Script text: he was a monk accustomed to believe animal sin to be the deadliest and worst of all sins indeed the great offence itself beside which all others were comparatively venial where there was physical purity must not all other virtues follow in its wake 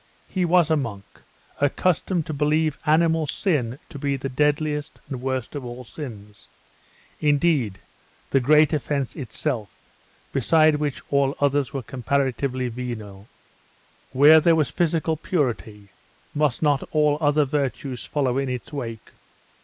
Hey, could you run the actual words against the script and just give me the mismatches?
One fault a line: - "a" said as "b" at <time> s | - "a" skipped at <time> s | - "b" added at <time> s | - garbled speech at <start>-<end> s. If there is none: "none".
none